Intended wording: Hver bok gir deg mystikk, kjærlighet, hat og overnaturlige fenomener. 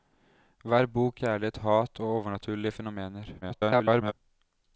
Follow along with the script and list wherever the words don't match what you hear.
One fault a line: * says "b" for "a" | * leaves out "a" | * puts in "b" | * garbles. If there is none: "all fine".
* leaves out "gir deg mystikk"
* garbles